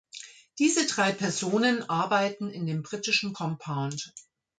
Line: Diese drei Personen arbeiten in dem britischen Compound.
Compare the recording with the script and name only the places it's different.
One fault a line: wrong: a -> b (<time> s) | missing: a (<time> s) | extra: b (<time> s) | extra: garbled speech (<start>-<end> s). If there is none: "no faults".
no faults